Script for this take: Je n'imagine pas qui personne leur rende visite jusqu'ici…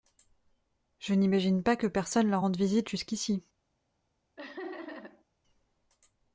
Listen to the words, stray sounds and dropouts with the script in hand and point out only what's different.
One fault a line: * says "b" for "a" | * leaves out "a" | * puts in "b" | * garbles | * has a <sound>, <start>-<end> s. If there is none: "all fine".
* says "que" for "qui"
* has a laugh, 4.4-5.2 s